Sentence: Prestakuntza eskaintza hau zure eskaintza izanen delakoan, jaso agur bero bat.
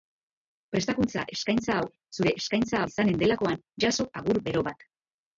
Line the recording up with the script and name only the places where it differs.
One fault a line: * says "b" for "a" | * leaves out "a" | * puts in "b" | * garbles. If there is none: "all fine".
all fine